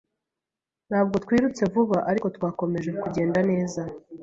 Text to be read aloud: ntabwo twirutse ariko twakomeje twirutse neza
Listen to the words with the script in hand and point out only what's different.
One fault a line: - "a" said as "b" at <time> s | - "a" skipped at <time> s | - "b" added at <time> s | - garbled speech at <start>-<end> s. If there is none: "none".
- "vuba" added at 1.7 s
- "twirutse" said as "kugenda" at 3.0 s